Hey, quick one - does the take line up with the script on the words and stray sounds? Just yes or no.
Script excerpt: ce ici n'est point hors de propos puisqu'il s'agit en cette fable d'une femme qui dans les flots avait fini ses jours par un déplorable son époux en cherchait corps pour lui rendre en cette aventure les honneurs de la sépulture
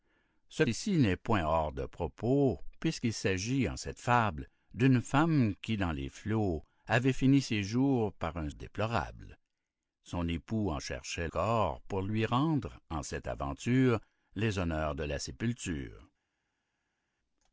yes